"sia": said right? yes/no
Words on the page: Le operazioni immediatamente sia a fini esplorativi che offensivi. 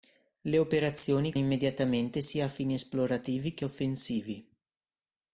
yes